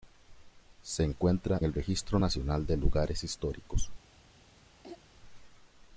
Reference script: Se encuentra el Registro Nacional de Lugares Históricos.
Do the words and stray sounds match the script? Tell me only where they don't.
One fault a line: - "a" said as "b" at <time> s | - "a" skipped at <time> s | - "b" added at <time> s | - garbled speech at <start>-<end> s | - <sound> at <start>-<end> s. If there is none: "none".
- throat clearing at 4.8-5.0 s